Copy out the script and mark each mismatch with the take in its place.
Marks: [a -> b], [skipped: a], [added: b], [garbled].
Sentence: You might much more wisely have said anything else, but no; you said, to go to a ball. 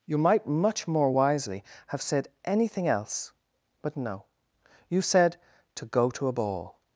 You might much more wisely have said anything else, but no; you said, to go to a ball.